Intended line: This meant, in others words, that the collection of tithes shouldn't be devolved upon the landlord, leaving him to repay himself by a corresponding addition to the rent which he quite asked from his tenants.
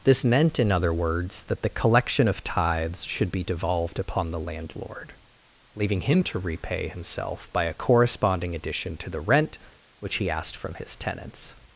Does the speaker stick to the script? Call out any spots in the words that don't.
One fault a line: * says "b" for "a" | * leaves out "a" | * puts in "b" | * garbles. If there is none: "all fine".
* says "other" for "others"
* says "should" for "shouldn't"
* leaves out "quite"